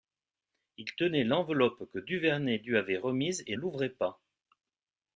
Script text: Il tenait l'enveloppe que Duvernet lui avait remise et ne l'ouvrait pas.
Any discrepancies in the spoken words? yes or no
yes